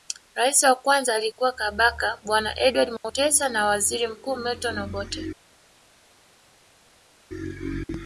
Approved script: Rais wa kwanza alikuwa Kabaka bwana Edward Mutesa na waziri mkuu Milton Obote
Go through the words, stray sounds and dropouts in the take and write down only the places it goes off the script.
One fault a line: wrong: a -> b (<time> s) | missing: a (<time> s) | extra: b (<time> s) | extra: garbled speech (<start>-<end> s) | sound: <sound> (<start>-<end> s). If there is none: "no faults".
no faults